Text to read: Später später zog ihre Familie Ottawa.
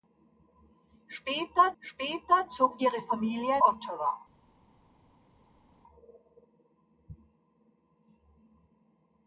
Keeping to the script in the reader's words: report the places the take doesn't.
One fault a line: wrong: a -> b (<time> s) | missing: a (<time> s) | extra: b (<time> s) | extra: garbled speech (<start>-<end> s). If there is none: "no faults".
no faults